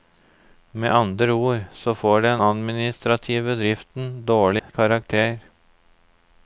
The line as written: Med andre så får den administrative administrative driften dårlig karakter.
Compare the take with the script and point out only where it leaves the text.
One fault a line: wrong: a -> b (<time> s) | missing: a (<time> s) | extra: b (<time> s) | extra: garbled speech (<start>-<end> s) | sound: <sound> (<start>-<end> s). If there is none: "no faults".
extra: ord (1.3 s)
missing: administrative (3.5 s)
sound: dropout (4.6-4.7 s)